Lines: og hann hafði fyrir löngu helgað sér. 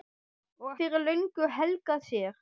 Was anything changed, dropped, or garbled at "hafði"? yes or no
yes